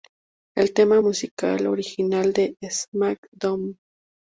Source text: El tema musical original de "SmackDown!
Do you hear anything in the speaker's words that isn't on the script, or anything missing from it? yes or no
no